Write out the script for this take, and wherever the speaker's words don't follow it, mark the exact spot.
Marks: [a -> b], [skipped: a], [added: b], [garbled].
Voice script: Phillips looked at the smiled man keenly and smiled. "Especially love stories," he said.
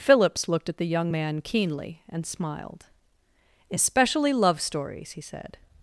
Phillips looked at the [smiled -> young] man keenly and smiled. "Especially love stories," he said.